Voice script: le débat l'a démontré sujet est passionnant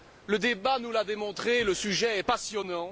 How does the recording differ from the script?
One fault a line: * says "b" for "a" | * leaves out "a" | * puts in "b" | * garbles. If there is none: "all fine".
* puts in "nous"
* puts in "le"